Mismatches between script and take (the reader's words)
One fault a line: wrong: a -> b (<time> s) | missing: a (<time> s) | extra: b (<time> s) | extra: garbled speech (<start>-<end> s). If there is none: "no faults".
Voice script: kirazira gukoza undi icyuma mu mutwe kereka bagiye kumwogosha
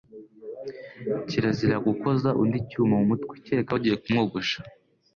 no faults